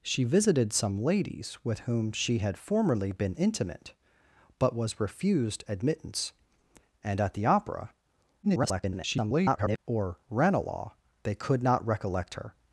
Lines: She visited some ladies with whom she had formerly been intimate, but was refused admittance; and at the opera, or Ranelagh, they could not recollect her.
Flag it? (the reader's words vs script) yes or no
yes